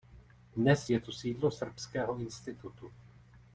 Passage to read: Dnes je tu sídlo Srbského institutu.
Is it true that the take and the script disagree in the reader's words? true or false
false